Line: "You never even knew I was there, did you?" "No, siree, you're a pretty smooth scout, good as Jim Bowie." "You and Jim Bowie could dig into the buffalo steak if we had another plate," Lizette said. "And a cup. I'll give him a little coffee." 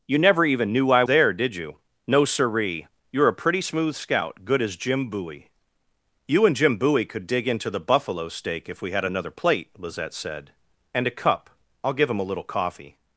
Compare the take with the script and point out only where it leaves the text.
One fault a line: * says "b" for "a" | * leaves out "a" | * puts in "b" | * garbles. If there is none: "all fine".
* leaves out "was"